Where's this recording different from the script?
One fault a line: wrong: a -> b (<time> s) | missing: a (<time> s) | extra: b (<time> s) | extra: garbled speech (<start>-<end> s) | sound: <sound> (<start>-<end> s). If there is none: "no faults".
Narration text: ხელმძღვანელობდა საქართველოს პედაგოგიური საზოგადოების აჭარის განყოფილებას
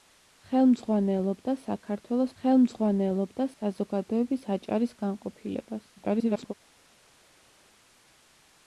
wrong: პედაგოგიური -> ხელმძღვანელობდა (2.4 s)
extra: garbled speech (6.0-6.5 s)